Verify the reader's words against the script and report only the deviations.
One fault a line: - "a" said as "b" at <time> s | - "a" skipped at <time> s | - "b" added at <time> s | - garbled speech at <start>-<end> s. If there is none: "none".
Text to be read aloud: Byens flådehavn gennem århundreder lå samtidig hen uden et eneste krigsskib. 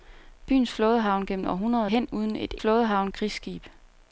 - "lå samtidig" skipped at 1.9 s
- "eneste" said as "flådehavn" at 2.6 s